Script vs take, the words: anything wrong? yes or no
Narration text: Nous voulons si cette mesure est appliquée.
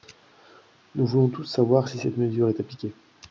yes